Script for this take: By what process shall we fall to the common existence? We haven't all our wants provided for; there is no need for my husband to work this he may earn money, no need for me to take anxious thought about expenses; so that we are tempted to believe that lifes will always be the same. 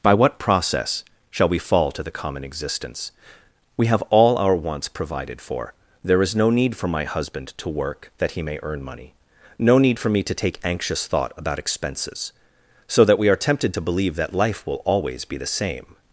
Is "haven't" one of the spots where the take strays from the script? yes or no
yes